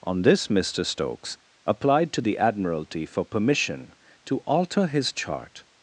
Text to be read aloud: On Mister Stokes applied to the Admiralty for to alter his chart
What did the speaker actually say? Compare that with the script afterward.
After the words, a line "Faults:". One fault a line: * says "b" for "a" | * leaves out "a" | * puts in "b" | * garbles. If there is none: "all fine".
On this, Mister Stokes applied to the Admiralty for permission to alter his chart
Faults:
* puts in "this"
* puts in "permission"